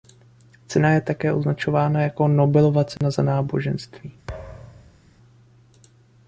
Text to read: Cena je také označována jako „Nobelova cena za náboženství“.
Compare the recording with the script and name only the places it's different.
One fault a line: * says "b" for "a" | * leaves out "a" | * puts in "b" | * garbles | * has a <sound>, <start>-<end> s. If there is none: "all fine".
* has a dropout, 3.0-3.0 s
* has a thud, 4.3-5.0 s